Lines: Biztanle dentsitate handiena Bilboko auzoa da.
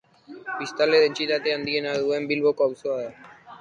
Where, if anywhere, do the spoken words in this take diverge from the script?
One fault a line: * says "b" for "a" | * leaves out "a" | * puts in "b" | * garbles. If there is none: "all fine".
* puts in "duen"